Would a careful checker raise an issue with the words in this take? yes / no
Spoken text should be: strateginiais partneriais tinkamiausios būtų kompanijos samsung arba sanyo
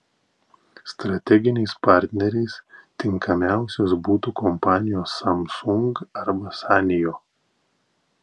no